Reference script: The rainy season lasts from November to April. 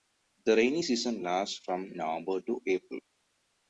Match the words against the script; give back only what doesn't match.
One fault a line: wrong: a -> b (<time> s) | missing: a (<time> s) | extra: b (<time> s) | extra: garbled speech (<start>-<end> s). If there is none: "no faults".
no faults